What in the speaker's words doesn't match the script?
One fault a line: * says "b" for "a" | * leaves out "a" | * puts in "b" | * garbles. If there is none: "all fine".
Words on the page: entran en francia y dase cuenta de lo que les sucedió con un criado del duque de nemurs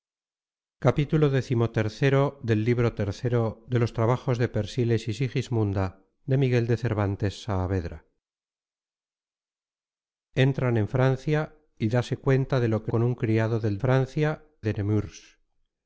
* leaves out "les sucedió"
* says "francia" for "duque"